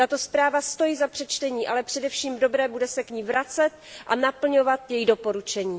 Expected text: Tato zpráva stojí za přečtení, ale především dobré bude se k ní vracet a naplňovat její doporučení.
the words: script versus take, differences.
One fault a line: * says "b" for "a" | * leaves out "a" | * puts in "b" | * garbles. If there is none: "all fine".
all fine